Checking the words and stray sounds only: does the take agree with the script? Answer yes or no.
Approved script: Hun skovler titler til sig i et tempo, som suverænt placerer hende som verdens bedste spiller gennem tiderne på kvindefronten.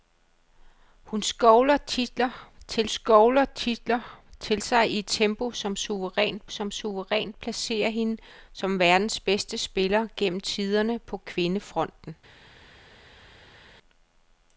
no